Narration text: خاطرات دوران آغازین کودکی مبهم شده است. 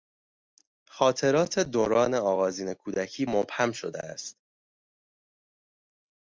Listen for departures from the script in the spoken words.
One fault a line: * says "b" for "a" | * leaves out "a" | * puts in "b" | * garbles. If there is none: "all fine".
all fine